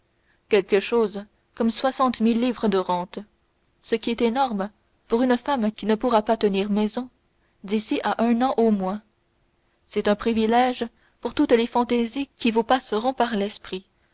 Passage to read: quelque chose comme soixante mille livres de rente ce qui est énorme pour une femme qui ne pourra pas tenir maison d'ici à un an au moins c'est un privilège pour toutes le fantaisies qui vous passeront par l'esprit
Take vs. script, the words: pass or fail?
fail